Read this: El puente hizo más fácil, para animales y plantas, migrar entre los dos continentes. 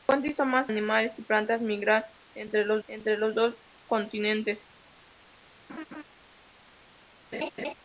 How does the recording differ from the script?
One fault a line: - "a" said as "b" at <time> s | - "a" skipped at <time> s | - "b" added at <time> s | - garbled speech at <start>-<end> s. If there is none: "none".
- "fácil para" skipped at 0.7 s
- "entre los" added at 2.9 s